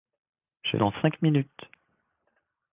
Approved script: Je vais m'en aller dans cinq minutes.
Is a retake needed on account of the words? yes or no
yes